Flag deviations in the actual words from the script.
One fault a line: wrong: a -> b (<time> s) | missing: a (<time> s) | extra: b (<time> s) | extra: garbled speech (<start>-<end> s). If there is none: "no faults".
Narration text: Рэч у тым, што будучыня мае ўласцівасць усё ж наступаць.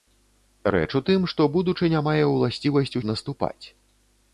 missing: усё (3.0 s)